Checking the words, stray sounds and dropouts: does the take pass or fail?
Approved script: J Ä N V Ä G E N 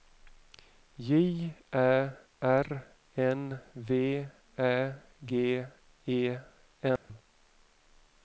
fail